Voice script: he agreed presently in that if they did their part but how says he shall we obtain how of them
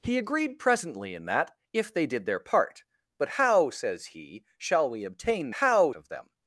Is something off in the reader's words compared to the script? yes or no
no